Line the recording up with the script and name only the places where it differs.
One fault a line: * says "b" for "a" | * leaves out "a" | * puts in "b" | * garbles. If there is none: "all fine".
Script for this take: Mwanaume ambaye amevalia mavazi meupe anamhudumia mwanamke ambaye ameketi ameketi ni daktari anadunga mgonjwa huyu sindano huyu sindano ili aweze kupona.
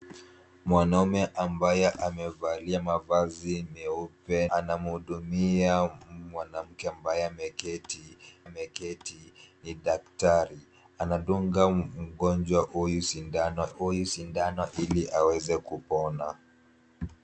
all fine